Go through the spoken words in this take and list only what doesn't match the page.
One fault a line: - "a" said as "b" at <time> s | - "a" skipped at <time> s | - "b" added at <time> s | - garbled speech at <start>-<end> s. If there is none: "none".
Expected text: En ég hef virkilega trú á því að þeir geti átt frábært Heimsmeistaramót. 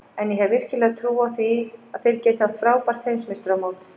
none